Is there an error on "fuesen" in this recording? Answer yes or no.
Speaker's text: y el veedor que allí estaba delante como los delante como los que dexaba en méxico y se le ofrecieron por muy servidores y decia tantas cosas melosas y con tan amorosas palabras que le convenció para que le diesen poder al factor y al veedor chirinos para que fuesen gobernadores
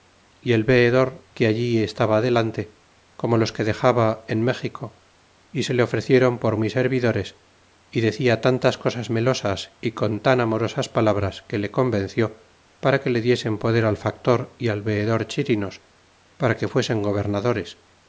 no